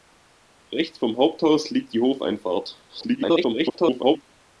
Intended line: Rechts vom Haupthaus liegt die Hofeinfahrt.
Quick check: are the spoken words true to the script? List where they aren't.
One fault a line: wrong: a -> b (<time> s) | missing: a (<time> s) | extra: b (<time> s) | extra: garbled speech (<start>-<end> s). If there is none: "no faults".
extra: garbled speech (2.9-4.2 s)